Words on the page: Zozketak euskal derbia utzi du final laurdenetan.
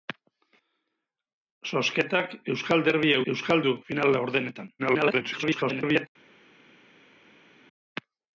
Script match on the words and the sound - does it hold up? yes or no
no